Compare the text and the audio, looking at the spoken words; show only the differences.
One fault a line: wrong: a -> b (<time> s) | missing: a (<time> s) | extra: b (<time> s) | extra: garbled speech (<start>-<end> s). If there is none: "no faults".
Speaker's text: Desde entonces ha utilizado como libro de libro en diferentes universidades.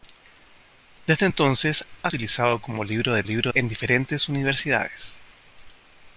no faults